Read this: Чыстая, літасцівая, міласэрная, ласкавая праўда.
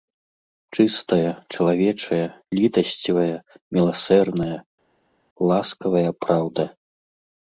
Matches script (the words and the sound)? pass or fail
fail